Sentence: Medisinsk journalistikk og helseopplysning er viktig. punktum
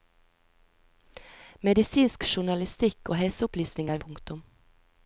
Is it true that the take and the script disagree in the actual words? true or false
true